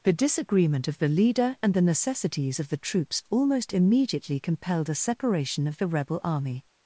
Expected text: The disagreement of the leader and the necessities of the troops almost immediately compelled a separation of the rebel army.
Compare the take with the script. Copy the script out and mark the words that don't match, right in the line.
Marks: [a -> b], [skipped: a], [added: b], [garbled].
The disagreement of the leader and the necessities of the troops almost immediately compelled a separation of the rebel army.